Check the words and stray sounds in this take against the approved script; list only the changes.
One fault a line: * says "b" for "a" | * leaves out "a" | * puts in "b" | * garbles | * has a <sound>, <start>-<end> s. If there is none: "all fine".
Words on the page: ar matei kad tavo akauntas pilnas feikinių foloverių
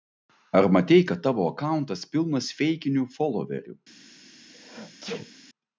* has a sneeze, 4.5-5.3 s